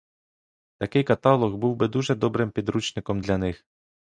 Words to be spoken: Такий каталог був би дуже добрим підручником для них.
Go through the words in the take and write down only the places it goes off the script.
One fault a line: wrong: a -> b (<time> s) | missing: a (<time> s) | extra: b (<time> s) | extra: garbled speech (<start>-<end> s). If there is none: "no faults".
no faults